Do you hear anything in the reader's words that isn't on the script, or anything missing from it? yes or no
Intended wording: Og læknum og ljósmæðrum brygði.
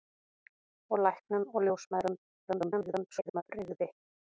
yes